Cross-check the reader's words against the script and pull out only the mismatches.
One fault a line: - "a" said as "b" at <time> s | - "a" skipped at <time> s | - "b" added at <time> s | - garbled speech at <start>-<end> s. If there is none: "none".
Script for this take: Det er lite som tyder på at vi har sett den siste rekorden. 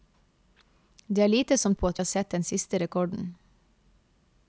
- "tyder" skipped at 1.8 s
- "vi" skipped at 2.0 s